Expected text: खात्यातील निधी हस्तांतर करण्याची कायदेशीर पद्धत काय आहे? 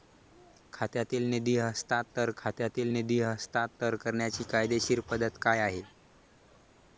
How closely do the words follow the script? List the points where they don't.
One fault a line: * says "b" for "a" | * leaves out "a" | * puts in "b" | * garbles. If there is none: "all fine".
* puts in "खात्यातील निधी हस्तांतर"